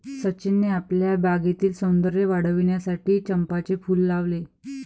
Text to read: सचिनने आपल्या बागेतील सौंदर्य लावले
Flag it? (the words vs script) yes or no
yes